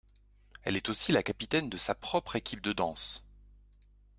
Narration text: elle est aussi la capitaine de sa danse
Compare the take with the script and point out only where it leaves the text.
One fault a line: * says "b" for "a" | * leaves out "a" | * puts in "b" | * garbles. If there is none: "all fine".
* puts in "propre équipe de"